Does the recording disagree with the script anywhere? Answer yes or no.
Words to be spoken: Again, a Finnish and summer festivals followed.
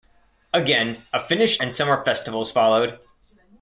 no